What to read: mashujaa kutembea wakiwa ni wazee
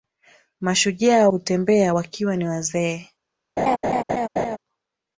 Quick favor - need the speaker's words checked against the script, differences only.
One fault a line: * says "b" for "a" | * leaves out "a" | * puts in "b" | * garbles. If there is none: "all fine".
all fine